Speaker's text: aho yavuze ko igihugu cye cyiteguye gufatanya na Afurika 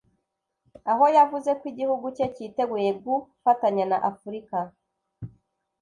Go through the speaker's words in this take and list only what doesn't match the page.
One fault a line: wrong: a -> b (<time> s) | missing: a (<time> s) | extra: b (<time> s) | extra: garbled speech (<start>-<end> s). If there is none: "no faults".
no faults